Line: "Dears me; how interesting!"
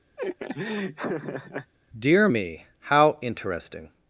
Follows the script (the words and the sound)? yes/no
no